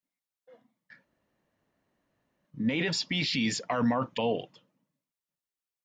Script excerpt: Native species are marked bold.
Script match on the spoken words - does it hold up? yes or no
yes